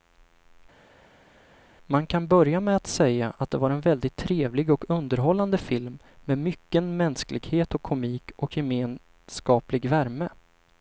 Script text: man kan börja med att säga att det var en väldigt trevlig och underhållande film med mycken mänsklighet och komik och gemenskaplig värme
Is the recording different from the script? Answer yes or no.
no